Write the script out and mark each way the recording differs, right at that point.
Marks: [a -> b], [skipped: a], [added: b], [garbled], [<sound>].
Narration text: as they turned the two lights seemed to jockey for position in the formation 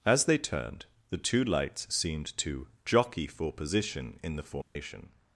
as they turned the two lights seemed to jockey for position in the formation [dropout]